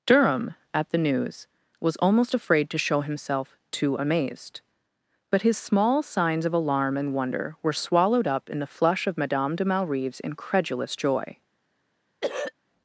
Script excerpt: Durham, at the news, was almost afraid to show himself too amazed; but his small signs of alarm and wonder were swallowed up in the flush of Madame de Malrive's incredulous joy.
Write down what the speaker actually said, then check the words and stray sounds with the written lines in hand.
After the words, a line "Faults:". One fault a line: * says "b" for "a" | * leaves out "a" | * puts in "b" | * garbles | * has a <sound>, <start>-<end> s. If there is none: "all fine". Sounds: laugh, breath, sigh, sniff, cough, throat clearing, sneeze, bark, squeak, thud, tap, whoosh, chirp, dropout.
Durham, at the news, was almost afraid to show himself too amazed; but his small signs of alarm and wonder were swallowed up in the flush of Madame de Malrive's incredulous joy.
Faults:
* has a throat clearing, 12.2-12.5 s